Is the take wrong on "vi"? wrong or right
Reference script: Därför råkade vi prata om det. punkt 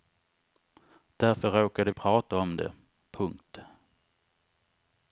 wrong